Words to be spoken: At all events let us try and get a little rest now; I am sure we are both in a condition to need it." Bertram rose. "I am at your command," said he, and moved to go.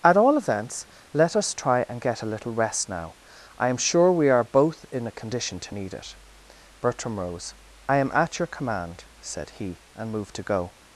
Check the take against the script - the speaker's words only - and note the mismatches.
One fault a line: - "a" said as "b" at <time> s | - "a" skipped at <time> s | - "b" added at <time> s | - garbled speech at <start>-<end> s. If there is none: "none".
none